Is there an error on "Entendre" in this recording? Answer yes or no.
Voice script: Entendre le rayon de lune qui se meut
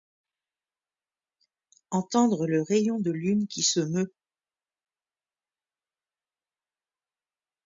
no